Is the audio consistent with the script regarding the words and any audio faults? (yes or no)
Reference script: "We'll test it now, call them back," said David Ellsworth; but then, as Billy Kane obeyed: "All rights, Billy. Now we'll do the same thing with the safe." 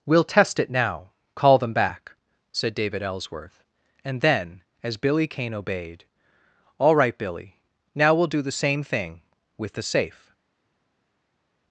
no